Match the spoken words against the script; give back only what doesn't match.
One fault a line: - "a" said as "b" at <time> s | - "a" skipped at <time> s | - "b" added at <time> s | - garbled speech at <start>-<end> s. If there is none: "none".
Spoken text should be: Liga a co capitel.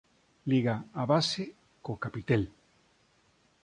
- "base" added at 1.1 s